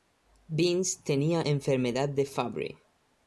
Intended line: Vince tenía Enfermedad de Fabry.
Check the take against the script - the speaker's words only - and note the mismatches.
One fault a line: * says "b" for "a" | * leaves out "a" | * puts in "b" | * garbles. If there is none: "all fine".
all fine